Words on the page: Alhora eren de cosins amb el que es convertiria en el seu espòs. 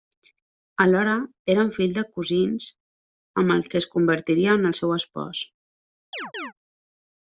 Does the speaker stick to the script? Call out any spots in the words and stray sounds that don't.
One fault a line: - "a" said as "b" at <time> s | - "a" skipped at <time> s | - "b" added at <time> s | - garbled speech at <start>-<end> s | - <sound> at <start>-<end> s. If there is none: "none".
- "fills" added at 1.8 s
- chirp at 6.1-6.5 s